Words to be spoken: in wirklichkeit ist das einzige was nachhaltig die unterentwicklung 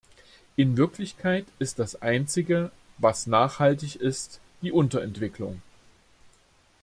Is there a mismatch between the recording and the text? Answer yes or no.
yes